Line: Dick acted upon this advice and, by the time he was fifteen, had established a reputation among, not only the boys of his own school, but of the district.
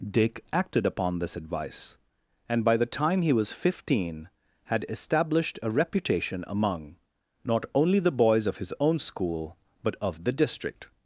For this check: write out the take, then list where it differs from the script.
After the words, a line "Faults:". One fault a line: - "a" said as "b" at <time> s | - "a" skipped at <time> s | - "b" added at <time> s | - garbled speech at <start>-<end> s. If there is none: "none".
Dick acted upon this advice and, by the time he was fifteen, had established a reputation among, not only the boys of his own school, but of the district.
Faults:
none